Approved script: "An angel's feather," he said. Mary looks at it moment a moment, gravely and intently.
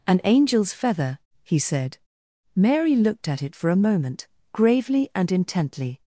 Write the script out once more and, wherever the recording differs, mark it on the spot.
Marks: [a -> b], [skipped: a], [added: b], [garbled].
"An angel's feather," he said. Mary [looks -> looked] at it [moment -> for] a moment, gravely and intently.